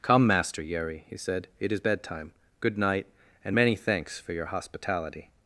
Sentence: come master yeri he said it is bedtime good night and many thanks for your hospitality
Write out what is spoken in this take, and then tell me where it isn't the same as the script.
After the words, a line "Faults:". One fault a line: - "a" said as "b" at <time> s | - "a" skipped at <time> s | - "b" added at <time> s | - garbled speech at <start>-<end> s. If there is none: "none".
come master yeri he said it is bedtime good night and many thanks for your hospitality
Faults:
none